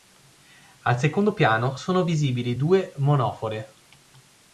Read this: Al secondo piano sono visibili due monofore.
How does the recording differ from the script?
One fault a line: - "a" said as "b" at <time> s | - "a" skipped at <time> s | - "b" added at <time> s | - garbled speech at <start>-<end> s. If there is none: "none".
none